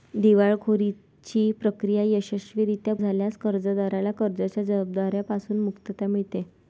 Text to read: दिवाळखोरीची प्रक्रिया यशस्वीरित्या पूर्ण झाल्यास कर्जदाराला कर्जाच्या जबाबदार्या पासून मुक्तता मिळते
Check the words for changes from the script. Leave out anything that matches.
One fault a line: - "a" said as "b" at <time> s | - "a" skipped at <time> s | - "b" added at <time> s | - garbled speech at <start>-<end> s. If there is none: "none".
- "पूर्ण" skipped at 2.9 s